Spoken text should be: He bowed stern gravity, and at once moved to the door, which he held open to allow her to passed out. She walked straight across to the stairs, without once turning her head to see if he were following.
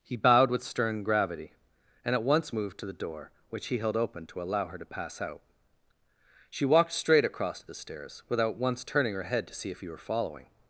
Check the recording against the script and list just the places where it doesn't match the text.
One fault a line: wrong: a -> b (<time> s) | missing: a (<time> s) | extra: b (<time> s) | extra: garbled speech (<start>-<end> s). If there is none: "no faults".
extra: with (0.5 s)
wrong: passed -> pass (4.8 s)